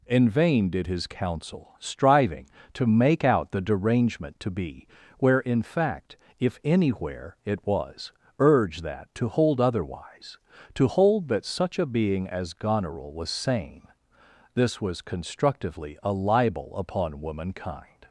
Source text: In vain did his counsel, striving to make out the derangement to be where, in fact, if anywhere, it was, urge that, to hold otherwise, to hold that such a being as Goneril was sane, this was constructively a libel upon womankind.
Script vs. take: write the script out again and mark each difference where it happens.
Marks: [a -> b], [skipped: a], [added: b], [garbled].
In vain did his counsel, striving to make out the derangement to be where, in fact, if anywhere, it was, urge that, to hold otherwise, to hold that such a being as Goneril was sane, this was constructively a libel upon womankind.